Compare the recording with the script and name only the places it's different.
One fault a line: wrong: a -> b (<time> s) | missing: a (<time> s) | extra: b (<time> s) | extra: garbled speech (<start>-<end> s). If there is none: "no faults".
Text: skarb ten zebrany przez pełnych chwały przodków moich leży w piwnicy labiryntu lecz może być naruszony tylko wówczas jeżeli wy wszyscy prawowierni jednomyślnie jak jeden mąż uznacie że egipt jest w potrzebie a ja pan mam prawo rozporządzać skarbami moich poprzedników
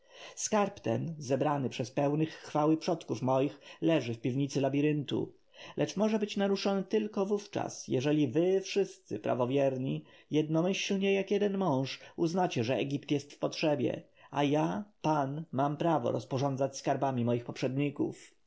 no faults